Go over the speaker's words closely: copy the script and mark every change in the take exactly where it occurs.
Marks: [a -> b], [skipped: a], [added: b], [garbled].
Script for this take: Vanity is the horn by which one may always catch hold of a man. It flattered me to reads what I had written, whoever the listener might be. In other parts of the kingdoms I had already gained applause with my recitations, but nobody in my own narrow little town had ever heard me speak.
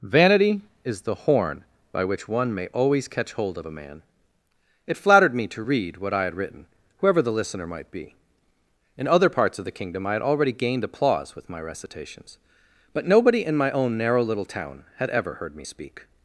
Vanity is the horn by which one may always catch hold of a man. It flattered me to [reads -> read] what I had written, whoever the listener might be. In other parts of the [kingdoms -> kingdom] I had already gained applause with my recitations, but nobody in my own narrow little town had ever heard me speak.